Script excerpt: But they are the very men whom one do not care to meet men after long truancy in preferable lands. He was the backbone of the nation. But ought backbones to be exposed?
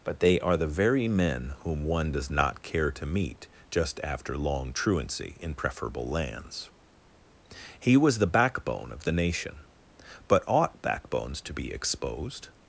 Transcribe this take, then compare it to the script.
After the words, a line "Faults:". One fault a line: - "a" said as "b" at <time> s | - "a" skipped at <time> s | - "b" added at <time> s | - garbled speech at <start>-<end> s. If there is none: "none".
But they are the very men whom one does not care to meet just after long truancy in preferable lands. He was the backbone of the nation. But ought backbones to be exposed?
Faults:
- "do" said as "does" at 2.1 s
- "men" said as "just" at 3.7 s